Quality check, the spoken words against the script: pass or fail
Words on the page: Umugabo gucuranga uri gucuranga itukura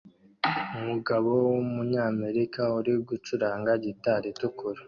fail